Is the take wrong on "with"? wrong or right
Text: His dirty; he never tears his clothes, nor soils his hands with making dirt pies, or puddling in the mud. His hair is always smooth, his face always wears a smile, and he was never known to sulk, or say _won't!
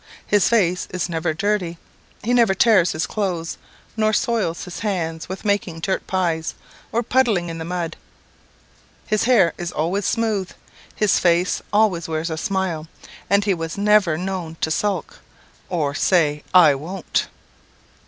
right